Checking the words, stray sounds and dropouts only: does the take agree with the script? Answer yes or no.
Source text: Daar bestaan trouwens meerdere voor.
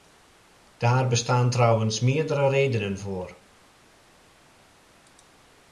no